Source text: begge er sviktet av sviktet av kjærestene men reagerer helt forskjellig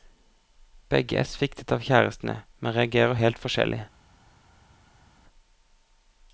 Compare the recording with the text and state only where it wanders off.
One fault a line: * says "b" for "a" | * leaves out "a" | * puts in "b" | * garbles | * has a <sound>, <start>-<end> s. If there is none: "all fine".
* leaves out "sviktet av"